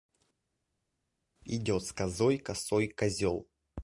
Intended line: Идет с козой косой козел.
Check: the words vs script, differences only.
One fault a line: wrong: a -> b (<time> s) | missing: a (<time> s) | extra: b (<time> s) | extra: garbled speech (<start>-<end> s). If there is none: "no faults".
no faults